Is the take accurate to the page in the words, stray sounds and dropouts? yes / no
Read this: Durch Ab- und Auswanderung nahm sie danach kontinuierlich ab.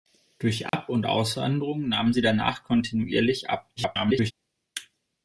no